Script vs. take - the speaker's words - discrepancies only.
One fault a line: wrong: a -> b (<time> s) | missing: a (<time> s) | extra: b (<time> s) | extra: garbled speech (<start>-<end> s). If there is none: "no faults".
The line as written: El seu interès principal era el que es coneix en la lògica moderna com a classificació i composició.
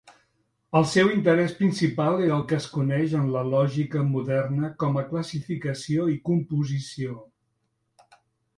no faults